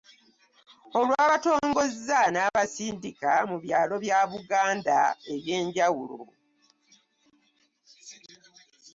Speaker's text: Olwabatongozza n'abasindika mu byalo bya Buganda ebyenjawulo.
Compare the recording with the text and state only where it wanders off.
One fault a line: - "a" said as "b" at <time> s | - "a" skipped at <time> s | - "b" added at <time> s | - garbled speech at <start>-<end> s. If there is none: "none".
none